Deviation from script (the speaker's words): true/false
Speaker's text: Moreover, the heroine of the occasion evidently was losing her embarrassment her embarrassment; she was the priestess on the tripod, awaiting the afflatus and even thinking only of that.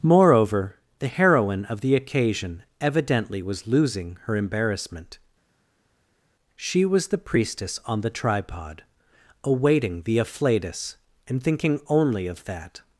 true